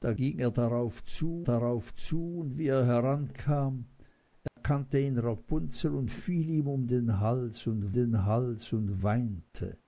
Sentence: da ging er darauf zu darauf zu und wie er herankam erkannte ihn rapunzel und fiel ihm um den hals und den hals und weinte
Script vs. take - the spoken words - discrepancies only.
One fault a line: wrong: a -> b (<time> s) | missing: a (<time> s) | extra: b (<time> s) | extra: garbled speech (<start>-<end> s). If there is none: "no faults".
no faults